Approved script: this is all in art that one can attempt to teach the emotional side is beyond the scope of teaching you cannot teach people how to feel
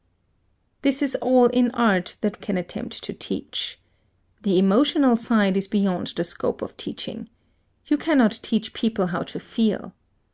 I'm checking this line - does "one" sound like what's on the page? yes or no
no